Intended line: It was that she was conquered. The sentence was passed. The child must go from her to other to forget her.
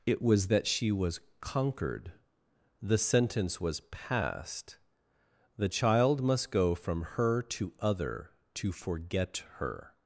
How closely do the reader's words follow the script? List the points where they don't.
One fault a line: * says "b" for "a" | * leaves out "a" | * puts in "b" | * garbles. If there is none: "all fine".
all fine